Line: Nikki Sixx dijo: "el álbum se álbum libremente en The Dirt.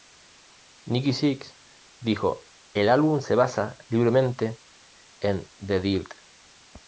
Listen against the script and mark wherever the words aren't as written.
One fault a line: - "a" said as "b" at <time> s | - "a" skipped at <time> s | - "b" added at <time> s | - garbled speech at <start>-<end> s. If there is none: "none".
- "álbum" said as "basa" at 3.4 s